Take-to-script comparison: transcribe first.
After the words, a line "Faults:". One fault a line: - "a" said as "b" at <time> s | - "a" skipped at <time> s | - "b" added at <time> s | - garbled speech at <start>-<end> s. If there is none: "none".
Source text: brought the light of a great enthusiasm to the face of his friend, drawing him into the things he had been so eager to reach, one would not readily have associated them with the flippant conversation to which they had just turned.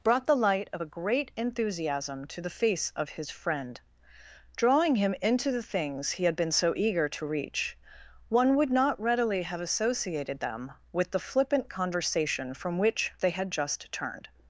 brought the light of a great enthusiasm to the face of his friend, drawing him into the things he had been so eager to reach, one would not readily have associated them with the flippant conversation from which they had just turned.
Faults:
- "to" said as "from" at 12.5 s